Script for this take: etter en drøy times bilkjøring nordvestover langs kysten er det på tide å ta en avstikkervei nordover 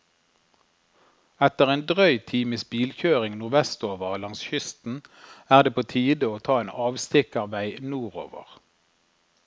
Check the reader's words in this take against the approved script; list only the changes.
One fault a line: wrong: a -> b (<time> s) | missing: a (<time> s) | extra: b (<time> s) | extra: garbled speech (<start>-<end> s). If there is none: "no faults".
no faults